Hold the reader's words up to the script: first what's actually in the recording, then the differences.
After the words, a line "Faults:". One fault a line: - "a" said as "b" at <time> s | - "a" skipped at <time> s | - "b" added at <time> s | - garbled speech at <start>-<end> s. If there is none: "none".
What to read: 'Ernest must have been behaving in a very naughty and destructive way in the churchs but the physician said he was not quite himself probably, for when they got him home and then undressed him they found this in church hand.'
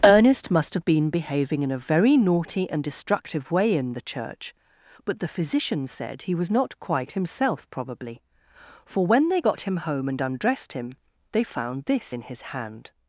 'Ernest must have been behaving in a very naughty and destructive way in the church but the physician said he was not quite himself probably, for when they got him home and undressed him they found this in his hand.'
Faults:
- "churchs" said as "church" at 4.0 s
- "then" skipped at 10.2 s
- "church" said as "his" at 12.2 s